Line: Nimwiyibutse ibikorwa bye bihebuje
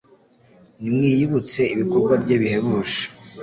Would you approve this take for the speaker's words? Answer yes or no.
yes